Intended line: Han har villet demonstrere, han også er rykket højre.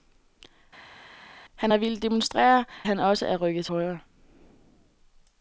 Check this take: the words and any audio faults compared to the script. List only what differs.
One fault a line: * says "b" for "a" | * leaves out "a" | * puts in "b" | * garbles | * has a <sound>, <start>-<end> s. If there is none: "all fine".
all fine